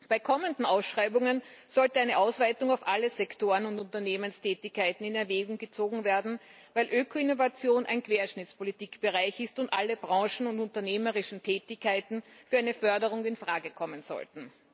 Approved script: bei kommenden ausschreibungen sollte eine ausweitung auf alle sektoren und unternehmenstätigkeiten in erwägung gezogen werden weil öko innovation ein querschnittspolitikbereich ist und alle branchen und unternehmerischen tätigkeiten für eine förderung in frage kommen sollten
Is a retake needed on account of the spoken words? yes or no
no